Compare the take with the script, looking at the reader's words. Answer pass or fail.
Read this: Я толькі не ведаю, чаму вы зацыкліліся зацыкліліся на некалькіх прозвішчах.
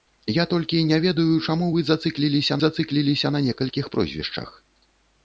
pass